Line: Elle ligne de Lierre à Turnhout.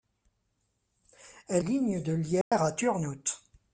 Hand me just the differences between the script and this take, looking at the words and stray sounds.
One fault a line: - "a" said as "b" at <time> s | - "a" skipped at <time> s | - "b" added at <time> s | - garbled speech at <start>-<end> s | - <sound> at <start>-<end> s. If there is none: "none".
- dropout at 2.4-2.5 s